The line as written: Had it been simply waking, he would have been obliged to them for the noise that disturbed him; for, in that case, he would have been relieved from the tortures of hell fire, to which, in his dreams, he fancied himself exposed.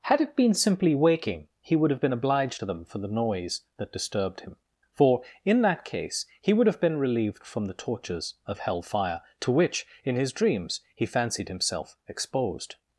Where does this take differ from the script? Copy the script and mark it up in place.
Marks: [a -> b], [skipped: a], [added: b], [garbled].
Had it been simply waking, he would have been obliged to them for the noise that disturbed him; for, in that case, he would have been relieved from the tortures of hell fire, to which, in his dreams, he fancied himself exposed.